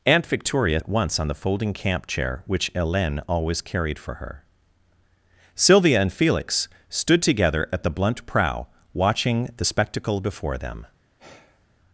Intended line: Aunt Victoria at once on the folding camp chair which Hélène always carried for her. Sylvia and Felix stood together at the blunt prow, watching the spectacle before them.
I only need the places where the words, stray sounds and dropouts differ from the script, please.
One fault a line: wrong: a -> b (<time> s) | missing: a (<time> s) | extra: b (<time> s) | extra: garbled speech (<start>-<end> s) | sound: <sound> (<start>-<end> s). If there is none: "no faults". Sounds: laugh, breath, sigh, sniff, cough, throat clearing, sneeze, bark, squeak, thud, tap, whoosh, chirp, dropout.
sound: sigh (11.2-11.7 s)